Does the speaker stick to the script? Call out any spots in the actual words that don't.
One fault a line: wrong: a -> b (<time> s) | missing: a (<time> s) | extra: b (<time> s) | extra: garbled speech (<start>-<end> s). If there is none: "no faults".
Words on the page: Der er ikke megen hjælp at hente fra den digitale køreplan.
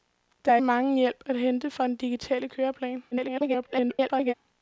missing: ikke (0.6 s)
extra: garbled speech (3.1-4.3 s)